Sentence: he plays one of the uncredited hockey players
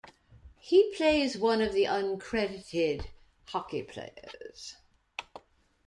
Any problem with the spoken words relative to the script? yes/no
no